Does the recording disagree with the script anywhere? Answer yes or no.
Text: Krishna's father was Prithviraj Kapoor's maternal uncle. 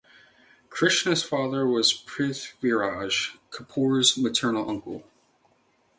no